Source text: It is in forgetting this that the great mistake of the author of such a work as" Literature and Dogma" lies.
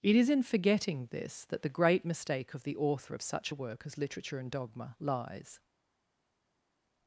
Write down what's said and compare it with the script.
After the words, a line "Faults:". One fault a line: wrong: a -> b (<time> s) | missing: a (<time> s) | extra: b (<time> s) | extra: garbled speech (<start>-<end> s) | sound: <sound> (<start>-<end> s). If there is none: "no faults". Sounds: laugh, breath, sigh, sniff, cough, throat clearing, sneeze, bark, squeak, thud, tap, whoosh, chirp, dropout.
It is in forgetting this that the great mistake of the author of such a work as" Literature and Dogma" lies.
Faults:
no faults